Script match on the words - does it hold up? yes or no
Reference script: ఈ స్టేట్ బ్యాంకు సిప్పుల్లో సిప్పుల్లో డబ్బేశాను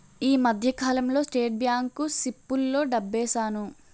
no